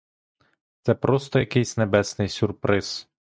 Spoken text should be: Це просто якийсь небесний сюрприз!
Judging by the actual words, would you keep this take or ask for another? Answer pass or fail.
pass